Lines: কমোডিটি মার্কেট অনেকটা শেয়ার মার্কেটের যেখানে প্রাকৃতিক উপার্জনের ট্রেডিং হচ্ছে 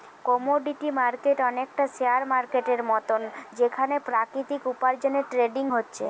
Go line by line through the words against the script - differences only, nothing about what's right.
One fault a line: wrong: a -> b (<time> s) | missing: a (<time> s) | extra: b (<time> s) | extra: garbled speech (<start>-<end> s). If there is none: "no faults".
extra: মতন (2.8 s)